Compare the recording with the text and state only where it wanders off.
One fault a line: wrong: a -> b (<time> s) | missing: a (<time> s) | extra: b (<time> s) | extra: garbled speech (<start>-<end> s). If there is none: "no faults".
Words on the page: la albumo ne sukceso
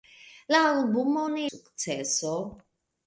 no faults